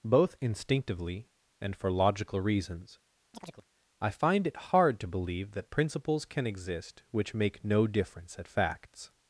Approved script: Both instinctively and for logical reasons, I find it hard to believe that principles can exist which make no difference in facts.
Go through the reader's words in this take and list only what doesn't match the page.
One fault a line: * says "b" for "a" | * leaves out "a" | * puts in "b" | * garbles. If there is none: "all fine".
* says "at" for "in"